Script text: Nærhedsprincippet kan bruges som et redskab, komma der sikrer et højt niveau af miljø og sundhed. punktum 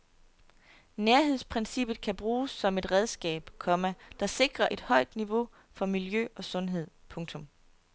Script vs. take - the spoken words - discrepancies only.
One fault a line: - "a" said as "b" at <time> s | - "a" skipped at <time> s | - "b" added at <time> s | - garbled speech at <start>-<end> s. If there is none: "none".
- "af" said as "for" at 5.7 s